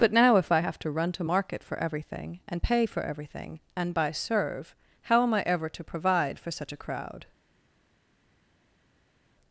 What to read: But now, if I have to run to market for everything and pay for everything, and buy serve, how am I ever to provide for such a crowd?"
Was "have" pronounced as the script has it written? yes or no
yes